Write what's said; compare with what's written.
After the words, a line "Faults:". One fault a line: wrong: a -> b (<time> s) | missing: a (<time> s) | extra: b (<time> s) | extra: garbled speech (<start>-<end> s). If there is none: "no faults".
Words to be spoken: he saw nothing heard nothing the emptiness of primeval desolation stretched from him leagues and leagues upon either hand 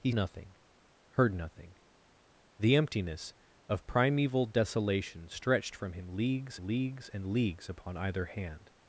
he nothing heard nothing the emptiness of primeval desolation stretched from him leagues leagues and leagues upon either hand
Faults:
missing: saw (0.1 s)
extra: leagues (6.6 s)